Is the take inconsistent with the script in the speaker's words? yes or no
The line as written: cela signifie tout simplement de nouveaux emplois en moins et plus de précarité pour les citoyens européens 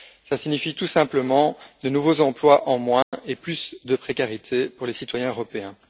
no